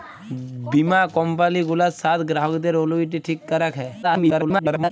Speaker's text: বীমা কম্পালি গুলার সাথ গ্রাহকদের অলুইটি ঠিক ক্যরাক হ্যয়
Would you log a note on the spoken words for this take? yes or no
yes